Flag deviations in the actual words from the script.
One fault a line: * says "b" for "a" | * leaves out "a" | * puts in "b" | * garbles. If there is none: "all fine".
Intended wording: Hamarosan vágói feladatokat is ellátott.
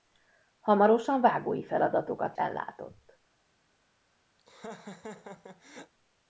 * leaves out "is"